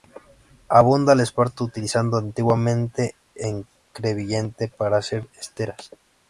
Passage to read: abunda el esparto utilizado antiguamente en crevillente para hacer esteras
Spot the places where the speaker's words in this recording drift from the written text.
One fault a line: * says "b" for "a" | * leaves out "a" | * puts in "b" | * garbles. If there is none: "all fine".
all fine